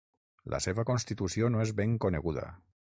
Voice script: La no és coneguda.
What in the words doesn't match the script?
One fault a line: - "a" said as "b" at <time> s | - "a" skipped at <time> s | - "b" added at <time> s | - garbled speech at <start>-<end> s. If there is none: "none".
- "seva constitució" added at 0.7 s
- "ben" added at 1.8 s